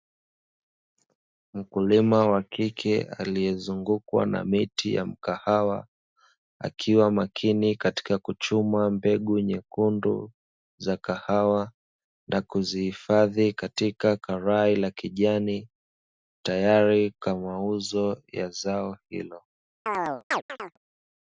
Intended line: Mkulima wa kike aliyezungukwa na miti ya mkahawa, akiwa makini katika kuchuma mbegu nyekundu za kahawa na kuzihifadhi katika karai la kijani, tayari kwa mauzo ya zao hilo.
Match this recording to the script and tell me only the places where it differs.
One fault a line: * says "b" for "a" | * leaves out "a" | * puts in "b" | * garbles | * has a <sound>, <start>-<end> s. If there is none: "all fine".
* has a chirp, 19.9-20.8 s